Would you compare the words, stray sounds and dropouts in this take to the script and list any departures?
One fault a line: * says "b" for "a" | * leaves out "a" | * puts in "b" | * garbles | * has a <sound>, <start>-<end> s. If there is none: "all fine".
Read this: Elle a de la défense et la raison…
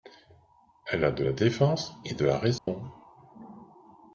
* puts in "de"
* has a dropout, 2.6-2.7 s